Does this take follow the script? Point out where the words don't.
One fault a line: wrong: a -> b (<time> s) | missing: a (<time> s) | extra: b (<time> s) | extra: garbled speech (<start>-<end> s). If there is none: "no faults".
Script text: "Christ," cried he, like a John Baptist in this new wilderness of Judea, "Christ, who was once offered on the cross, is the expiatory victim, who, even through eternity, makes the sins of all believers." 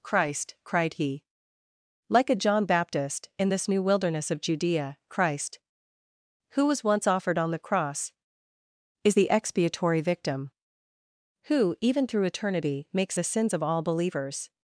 no faults